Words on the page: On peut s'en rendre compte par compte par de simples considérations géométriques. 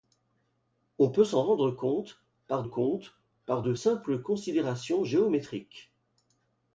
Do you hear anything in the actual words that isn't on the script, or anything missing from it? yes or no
no